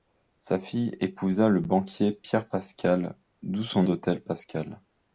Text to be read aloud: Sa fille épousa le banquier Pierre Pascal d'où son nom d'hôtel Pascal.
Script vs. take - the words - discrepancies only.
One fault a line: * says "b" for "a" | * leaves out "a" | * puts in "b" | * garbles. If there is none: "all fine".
* leaves out "nom"